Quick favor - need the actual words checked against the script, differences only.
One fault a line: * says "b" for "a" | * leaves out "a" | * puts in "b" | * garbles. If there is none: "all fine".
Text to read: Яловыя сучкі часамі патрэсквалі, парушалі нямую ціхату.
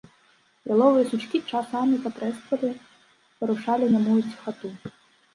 all fine